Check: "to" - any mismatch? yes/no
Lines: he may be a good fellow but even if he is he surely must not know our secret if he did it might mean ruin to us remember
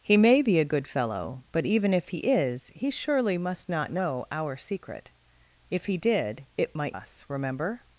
yes